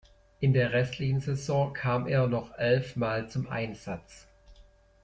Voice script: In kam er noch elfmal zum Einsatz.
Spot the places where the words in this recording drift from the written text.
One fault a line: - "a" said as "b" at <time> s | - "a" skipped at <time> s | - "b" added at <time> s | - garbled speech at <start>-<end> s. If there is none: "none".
- "der restlichen Saison" added at 0.5 s